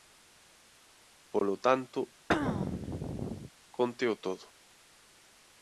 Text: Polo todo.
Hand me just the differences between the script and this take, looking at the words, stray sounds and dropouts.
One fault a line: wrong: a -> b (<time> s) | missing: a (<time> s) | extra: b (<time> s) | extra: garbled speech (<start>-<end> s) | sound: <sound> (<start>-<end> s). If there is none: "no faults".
extra: tanto cónteo (1.6 s)
sound: throat clearing (2.3-3.5 s)